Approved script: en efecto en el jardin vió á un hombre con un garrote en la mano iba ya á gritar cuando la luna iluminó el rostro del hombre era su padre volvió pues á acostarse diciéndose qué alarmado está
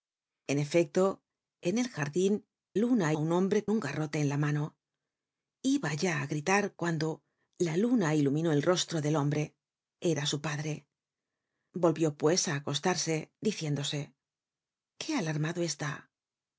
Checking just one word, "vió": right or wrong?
wrong